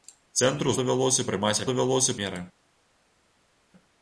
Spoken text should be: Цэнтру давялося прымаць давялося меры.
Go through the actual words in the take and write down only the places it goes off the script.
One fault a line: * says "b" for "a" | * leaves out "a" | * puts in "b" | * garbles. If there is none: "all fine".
all fine